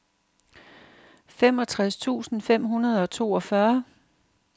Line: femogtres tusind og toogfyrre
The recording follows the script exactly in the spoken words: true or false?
false